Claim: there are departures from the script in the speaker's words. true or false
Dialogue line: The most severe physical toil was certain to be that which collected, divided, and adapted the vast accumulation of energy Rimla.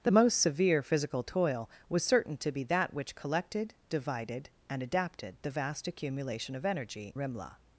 false